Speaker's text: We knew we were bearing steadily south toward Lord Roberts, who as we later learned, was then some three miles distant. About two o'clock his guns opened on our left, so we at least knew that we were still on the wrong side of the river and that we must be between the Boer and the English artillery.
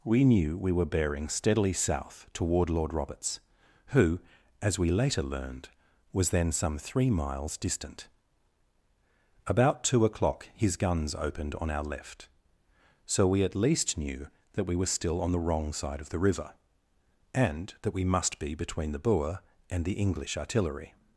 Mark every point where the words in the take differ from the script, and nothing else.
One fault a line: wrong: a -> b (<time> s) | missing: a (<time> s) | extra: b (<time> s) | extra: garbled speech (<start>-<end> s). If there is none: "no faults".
no faults